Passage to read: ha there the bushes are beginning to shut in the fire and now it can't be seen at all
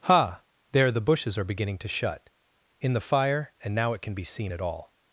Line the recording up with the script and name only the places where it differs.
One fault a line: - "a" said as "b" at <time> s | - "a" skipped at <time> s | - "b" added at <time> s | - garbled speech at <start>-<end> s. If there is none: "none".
- "can't" said as "can" at 4.0 s